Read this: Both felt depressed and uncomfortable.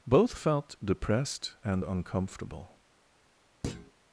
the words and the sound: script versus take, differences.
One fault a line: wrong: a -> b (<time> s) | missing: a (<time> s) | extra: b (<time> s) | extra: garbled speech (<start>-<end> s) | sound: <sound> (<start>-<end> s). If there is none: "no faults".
sound: thud (3.6-3.9 s)